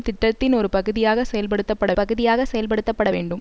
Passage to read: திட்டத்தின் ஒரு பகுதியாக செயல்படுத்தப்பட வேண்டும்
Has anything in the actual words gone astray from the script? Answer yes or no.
yes